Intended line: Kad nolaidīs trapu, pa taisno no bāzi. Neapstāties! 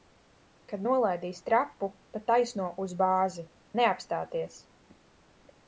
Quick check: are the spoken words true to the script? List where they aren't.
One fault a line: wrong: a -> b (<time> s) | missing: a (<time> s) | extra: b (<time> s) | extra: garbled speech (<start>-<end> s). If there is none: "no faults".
wrong: no -> uz (2.9 s)